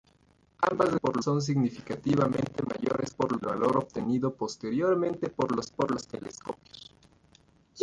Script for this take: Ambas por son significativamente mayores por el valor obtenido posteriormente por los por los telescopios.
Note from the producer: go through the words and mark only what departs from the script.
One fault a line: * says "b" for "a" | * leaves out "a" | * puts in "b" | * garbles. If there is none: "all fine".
all fine